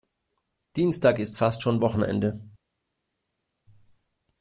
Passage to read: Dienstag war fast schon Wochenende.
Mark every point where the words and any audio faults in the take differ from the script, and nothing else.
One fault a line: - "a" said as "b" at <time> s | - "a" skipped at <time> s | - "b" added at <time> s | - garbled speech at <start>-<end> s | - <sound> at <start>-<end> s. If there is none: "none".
- "war" said as "ist" at 1.2 s